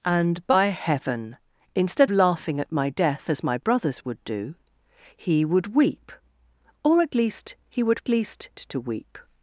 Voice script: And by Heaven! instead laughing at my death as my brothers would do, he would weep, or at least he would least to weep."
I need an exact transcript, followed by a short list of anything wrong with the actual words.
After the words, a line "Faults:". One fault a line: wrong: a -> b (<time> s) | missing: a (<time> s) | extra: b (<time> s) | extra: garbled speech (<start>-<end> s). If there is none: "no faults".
And by Heaven! instead laughing at my death as my brothers would do, he would weep, or at least he would least to weep."
Faults:
no faults